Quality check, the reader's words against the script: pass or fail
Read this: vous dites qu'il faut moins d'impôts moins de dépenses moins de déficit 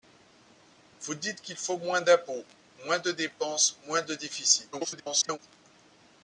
fail